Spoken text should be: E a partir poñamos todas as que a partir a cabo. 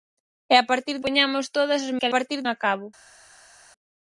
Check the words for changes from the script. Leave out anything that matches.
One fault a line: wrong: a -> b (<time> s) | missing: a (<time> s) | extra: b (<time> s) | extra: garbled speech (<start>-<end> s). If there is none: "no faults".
no faults